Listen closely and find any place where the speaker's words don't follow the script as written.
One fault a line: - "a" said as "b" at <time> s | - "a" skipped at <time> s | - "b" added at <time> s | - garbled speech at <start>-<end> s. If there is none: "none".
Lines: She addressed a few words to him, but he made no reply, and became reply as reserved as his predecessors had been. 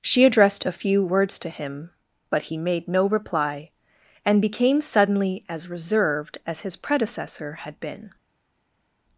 - "reply" said as "suddenly" at 4.8 s
- "predecessors" said as "predecessor" at 6.8 s